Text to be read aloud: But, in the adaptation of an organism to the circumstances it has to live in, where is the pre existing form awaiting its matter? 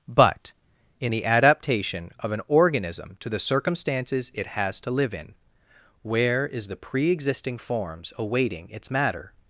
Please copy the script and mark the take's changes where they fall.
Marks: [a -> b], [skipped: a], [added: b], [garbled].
But, in the adaptation of an organism to the circumstances it has to live in, where is the pre existing [form -> forms] awaiting its matter?